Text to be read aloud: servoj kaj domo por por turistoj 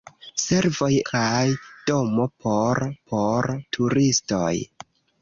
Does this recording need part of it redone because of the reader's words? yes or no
no